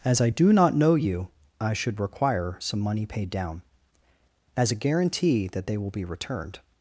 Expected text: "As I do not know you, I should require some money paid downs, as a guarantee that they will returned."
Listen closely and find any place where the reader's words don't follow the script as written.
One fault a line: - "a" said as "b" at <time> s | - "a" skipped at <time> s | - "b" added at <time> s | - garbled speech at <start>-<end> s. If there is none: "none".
- "downs" said as "down" at 3.3 s
- "be" added at 5.9 s